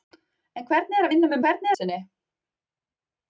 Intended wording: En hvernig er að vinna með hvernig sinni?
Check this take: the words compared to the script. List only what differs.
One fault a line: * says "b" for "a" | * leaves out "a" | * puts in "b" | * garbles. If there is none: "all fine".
all fine